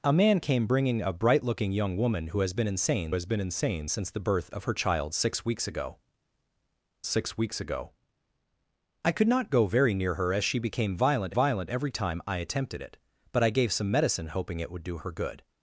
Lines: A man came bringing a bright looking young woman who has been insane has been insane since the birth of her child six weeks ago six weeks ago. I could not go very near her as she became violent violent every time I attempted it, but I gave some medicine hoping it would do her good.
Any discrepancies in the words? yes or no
no